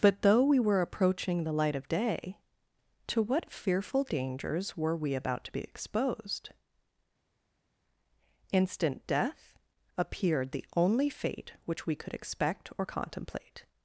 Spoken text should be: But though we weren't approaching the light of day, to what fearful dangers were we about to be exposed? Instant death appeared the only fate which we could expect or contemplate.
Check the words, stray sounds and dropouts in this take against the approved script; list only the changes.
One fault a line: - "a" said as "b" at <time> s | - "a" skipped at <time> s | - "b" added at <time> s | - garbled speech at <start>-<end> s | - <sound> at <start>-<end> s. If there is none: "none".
- "weren't" said as "were" at 0.6 s